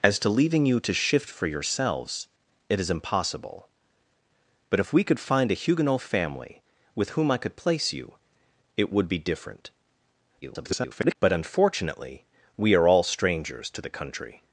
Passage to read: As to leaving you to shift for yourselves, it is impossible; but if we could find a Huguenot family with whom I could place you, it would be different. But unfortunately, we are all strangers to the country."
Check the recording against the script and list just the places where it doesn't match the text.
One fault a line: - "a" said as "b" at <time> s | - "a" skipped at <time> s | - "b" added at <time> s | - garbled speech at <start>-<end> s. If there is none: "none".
- garbled speech at 10.4-11.2 s